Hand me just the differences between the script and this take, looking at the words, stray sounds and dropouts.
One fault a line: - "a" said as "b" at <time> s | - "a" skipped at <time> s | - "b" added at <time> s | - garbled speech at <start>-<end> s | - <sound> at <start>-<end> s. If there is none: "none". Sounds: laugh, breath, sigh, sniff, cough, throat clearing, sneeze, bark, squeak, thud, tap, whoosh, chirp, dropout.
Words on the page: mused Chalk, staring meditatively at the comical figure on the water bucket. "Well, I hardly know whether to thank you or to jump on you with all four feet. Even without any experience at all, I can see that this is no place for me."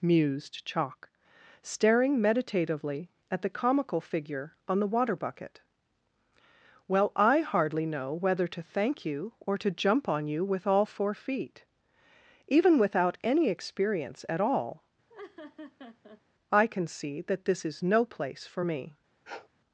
- laugh at 15.1-16.2 s
- sniff at 19.3-19.5 s